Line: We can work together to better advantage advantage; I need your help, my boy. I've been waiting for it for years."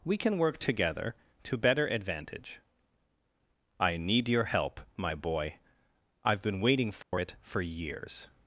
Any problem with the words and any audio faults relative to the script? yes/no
yes